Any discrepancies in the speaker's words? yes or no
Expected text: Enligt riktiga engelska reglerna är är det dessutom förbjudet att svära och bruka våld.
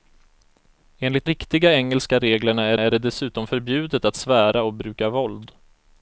no